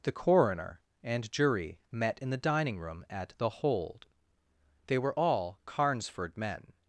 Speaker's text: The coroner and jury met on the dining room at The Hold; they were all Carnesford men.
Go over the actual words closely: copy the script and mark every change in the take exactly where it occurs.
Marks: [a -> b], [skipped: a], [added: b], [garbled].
The coroner and jury met [on -> in] the dining room at The Hold; they were all Carnesford men.